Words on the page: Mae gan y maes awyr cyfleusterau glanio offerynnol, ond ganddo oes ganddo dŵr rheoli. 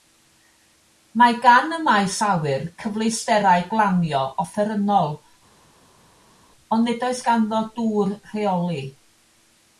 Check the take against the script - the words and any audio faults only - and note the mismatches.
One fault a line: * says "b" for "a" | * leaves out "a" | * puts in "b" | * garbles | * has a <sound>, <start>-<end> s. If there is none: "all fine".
* says "nid" for "ganddo"